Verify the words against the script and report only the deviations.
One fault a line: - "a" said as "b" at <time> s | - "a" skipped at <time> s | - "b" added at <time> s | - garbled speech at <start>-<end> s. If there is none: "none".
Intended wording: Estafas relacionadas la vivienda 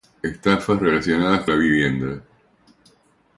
none